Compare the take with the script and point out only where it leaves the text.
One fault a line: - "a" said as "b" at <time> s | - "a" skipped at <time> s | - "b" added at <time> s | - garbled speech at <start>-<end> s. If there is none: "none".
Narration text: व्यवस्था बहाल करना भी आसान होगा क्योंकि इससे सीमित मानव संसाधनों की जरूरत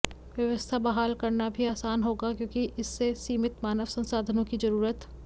none